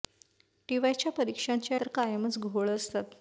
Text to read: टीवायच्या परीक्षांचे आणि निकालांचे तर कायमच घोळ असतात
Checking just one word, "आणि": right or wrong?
wrong